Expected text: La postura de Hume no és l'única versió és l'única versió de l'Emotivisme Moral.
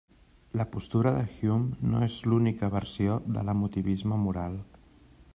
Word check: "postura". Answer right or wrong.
right